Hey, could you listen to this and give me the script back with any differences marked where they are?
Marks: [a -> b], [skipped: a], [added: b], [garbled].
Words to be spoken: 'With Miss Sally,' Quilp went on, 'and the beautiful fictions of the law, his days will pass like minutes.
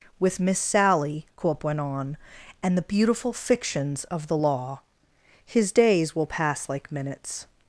'With Miss Sally,' Quilp went on, 'and the beautiful fictions of the law, his days will pass like minutes.